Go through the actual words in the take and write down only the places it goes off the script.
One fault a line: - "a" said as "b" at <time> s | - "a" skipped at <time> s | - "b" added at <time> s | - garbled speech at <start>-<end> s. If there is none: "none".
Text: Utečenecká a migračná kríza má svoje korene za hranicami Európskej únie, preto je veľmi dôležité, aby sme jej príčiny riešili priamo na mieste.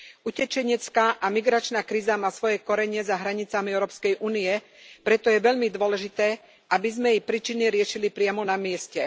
none